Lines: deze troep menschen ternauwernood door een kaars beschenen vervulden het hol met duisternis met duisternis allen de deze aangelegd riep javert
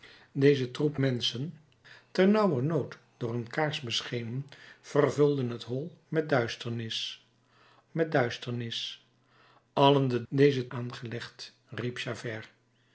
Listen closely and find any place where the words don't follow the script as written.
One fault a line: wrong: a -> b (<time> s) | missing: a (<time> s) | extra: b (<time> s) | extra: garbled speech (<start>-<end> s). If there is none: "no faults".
no faults